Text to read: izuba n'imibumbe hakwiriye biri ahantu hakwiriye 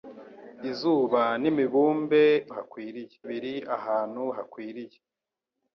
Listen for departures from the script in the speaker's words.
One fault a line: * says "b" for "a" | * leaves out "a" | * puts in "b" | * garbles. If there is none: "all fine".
all fine